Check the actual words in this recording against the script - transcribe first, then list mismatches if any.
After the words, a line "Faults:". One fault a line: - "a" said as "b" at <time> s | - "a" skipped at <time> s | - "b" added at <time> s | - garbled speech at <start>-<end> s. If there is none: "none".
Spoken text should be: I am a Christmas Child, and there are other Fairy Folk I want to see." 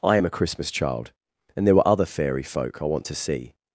I am a Christmas Child, and there were other Fairy Folk I want to see."
Faults:
- "are" said as "were" at 1.8 s